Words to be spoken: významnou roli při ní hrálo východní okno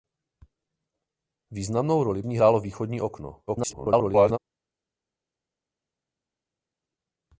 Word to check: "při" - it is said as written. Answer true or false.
false